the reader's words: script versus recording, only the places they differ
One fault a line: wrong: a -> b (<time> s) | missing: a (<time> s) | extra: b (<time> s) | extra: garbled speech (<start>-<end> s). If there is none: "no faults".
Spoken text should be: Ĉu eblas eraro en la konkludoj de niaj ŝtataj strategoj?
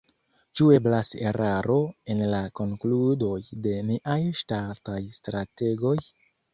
no faults